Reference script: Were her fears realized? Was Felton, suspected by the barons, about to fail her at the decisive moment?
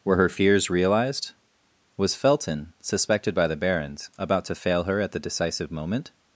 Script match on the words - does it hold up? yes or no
yes